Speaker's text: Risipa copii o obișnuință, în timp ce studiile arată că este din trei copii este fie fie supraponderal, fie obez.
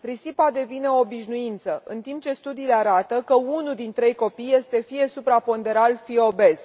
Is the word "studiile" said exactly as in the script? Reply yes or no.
yes